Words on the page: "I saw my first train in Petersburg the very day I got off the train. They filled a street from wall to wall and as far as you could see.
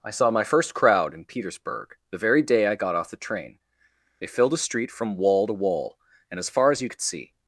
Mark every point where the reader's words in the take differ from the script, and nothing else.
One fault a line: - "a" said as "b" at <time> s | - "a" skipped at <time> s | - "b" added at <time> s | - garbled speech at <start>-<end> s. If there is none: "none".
- "train" said as "crowd" at 0.7 s